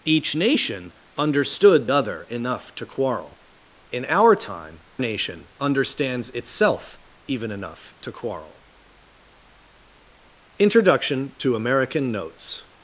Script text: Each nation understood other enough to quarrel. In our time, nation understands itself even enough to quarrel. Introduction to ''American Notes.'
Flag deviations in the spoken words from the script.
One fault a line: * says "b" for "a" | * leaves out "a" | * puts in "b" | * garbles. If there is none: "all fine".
all fine